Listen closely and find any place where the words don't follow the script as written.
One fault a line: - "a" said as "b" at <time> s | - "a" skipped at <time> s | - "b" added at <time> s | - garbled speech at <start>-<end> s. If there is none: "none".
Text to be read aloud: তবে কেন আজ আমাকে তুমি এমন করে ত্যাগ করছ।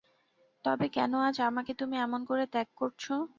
none